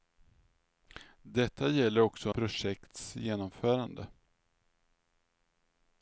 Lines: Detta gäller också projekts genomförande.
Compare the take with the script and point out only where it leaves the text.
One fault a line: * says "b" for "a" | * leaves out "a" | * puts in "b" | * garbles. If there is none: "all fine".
all fine